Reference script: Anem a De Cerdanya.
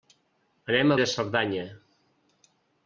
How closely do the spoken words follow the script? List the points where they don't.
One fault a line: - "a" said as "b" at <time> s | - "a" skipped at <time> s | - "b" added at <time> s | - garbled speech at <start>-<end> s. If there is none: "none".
none